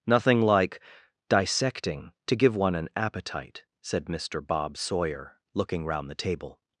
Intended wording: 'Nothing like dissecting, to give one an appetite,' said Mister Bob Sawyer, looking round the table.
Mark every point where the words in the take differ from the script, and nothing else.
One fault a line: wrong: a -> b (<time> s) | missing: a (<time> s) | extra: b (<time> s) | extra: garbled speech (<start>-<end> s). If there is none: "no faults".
no faults